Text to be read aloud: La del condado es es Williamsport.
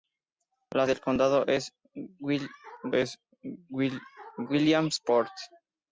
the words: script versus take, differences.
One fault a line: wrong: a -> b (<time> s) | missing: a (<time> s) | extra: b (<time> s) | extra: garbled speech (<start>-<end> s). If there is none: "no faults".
no faults